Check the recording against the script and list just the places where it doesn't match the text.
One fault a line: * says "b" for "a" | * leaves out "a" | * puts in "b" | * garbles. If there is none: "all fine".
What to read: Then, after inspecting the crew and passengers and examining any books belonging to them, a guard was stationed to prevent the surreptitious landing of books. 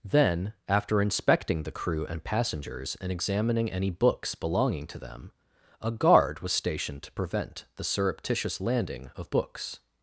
all fine